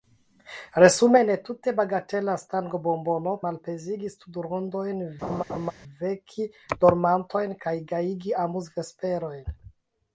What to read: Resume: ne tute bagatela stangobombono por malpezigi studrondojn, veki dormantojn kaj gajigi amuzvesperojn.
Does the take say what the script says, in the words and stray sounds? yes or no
no